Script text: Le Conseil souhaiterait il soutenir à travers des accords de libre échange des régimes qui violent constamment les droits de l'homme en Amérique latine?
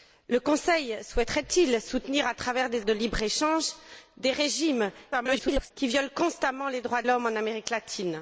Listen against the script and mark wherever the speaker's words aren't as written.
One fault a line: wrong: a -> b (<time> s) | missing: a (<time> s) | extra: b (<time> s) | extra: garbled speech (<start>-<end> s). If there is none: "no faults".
missing: accords (2.9 s)
extra: garbled speech (5.1-5.7 s)
missing: de (7.0 s)